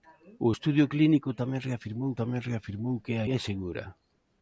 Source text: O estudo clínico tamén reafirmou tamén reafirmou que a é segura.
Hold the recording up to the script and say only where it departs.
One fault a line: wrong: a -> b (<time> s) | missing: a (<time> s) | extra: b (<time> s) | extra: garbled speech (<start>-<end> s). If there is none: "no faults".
no faults